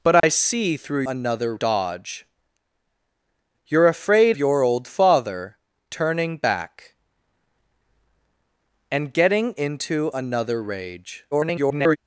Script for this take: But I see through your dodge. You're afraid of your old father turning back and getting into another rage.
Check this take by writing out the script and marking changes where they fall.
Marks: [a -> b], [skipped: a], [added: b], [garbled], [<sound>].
But I [dropout] see through [your -> another] dodge. You're afraid [skipped: of] your old father turning back and getting into another rage. [garbled]